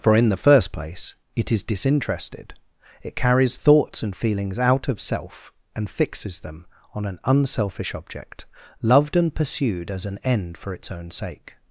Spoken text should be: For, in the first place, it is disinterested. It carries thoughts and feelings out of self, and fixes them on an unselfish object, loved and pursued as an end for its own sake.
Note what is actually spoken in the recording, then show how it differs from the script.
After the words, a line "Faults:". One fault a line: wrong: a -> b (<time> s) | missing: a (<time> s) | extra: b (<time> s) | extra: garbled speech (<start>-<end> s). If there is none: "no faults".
For, in the first place, it is disinterested. It carries thoughts and feelings out of self, and fixes them on an unselfish object, loved and pursued as an end for its own sake.
Faults:
no faults